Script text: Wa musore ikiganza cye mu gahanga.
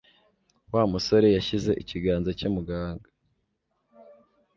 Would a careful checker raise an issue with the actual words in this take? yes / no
yes